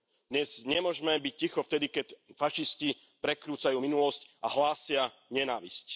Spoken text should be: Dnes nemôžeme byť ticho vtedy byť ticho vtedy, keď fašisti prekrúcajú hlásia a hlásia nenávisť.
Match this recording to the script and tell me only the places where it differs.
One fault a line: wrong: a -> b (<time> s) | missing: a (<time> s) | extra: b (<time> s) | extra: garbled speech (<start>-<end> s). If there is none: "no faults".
missing: byť ticho vtedy (1.9 s)
wrong: hlásia -> minulosť (3.8 s)